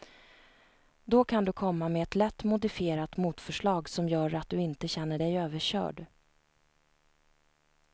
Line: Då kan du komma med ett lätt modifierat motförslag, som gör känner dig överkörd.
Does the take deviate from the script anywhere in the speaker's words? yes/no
yes